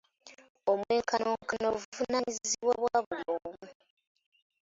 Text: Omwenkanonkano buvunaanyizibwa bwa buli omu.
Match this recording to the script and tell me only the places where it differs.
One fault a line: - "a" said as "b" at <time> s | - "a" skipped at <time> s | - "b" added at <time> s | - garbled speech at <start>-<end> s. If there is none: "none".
none